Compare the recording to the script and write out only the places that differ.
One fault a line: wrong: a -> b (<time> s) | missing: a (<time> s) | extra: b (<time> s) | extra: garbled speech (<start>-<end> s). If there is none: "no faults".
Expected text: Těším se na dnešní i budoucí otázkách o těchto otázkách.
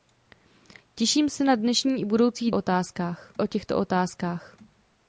no faults